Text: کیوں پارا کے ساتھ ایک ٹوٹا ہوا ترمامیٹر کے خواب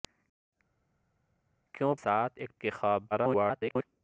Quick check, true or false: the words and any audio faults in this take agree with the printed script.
false